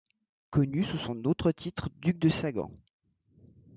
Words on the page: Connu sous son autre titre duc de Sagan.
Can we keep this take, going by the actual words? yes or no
yes